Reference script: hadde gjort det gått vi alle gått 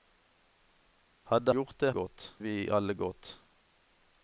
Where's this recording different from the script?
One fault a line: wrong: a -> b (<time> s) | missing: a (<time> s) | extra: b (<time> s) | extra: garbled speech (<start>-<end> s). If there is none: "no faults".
no faults